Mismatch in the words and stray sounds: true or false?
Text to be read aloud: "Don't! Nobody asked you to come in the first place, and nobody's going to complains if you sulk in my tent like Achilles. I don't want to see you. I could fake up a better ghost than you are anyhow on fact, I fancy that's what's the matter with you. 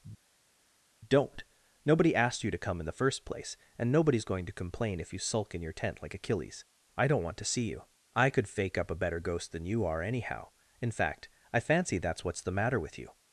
true